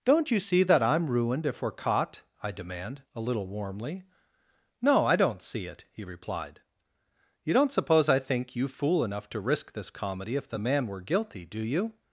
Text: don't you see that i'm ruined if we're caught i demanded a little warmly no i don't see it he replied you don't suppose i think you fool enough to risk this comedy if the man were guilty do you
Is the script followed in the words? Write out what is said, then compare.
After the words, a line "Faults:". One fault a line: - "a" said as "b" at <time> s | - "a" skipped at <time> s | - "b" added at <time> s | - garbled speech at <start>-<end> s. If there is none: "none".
don't you see that i'm ruined if we're caught i demand a little warmly no i don't see it he replied you don't suppose i think you fool enough to risk this comedy if the man were guilty do you
Faults:
- "demanded" said as "demand" at 2.5 s